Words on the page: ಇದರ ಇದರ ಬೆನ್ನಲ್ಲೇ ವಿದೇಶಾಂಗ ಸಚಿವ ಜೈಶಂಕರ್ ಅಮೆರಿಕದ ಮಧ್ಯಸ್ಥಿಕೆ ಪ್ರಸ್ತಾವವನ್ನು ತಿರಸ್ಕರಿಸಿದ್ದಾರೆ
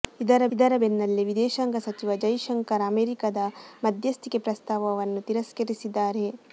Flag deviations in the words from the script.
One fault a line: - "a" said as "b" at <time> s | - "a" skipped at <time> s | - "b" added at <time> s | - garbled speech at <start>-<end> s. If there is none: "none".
none